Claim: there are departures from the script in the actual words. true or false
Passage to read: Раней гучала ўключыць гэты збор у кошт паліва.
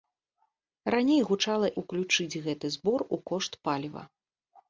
false